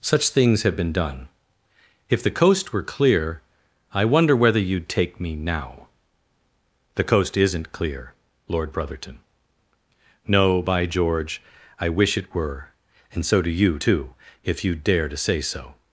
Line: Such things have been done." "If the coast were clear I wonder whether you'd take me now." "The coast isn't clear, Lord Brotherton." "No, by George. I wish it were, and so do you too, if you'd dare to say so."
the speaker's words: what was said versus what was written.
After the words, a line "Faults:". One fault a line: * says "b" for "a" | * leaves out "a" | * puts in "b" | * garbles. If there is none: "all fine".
Such things have been done." "If the coast were clear I wonder whether you'd take me now." "The coast isn't clear, Lord Brotherton." "No, by George. I wish it were, and so do you too, if you'd dare to say so."
Faults:
all fine